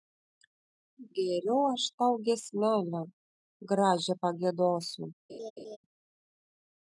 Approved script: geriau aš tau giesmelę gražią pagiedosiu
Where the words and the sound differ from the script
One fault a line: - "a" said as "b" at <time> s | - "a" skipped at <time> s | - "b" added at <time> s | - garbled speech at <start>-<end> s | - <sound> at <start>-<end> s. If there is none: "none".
- laugh at 5.3-5.8 s